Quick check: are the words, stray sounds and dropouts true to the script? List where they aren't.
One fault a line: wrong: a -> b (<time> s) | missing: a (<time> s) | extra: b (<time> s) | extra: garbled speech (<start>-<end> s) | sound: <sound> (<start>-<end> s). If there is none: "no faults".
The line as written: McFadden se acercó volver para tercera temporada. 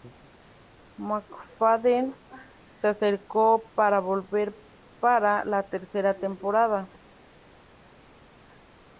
extra: para (3.8 s)
extra: la (5.4 s)